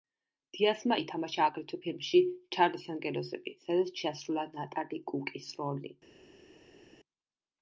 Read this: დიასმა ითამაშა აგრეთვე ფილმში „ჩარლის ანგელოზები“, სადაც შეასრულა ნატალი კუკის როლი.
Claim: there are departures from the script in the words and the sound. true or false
false